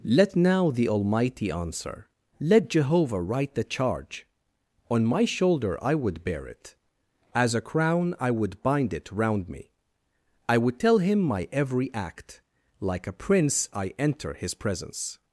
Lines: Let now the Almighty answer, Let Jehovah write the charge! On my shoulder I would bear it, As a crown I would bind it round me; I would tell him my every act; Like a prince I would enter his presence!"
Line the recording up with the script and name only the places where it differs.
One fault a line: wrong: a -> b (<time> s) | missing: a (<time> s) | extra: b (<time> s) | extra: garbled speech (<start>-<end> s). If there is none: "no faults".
missing: would (13.9 s)